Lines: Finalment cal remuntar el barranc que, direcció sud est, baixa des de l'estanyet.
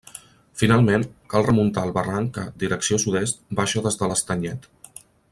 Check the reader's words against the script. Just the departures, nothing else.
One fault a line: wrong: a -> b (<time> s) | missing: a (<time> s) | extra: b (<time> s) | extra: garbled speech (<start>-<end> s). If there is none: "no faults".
no faults